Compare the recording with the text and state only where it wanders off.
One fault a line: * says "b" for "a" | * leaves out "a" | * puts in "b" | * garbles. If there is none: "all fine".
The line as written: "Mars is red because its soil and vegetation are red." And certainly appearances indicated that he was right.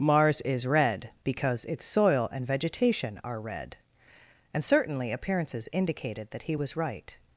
all fine